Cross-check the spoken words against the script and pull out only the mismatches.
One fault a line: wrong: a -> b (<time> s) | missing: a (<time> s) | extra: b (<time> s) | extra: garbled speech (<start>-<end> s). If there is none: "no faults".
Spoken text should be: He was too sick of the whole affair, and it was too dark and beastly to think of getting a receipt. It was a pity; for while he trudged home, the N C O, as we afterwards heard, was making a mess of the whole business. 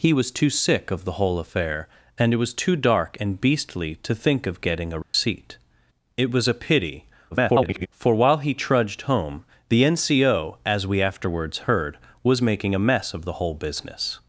extra: garbled speech (7.3-7.9 s)